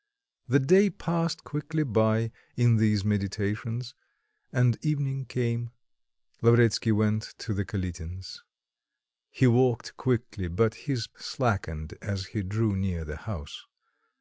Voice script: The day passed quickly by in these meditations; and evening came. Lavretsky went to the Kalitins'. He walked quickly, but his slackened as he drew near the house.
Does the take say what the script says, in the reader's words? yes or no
yes